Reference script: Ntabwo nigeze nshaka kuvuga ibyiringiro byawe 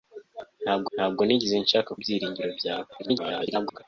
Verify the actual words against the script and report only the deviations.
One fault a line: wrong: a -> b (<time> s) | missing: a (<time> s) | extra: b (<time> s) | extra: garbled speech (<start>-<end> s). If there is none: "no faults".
extra: ntabwo (0.9 s)
missing: kuvuga (1.9 s)
extra: garbled speech (3.0-3.8 s)